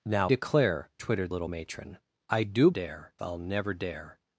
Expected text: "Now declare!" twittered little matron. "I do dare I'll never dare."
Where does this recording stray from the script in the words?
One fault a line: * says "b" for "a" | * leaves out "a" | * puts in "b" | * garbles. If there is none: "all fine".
all fine